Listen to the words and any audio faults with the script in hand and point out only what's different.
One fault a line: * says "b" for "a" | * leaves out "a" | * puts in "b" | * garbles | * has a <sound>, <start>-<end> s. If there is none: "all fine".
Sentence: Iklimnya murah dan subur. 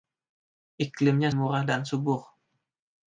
all fine